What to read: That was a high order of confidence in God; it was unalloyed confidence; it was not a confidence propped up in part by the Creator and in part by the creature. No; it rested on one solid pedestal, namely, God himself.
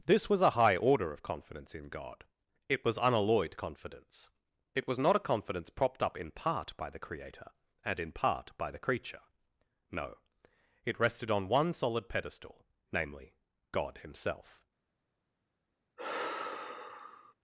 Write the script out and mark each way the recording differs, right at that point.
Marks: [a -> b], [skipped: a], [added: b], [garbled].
[That -> This] was a high order of confidence in God; it was unalloyed confidence; it was not a confidence propped up in part by the Creator and in part by the creature. No; it rested on one solid pedestal, namely, God himself.